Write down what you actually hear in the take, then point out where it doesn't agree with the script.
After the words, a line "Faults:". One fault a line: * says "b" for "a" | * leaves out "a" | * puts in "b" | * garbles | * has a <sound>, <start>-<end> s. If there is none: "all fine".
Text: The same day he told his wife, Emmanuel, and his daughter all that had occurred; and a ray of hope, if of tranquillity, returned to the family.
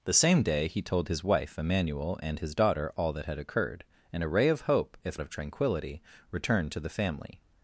The same day he told his wife, Emmanuel, and his daughter all that had occurred; and a ray of hope, if of tranquillity, returned to the family.
Faults:
all fine